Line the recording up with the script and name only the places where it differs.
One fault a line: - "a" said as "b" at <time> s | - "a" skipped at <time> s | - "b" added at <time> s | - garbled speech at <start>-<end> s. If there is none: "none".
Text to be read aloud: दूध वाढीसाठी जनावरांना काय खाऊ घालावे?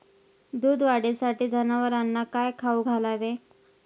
none